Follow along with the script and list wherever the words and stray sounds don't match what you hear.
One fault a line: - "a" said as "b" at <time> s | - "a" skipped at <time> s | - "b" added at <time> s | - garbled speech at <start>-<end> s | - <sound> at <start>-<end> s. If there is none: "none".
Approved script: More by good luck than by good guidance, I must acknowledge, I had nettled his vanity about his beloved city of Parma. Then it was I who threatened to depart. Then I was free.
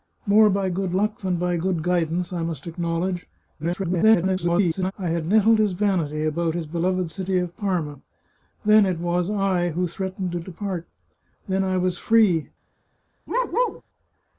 - garbled speech at 3.6-4.9 s
- bark at 13.3-13.8 s